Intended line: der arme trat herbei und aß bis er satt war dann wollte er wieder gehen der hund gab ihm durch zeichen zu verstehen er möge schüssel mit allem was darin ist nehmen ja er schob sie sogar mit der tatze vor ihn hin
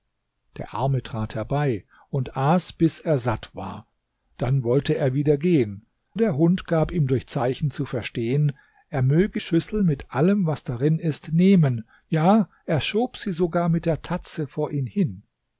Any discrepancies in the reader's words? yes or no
no